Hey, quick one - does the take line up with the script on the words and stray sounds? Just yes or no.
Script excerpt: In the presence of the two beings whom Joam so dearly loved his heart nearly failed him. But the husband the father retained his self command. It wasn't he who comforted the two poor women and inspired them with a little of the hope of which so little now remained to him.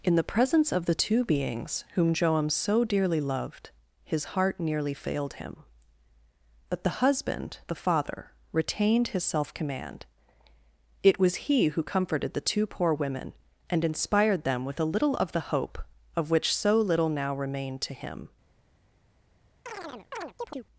no